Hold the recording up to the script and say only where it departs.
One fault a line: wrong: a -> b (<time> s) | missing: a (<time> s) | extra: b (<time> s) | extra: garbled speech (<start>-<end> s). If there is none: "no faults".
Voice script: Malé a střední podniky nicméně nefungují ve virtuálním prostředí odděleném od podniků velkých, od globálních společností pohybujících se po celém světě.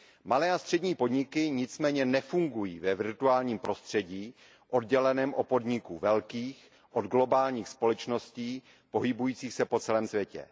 no faults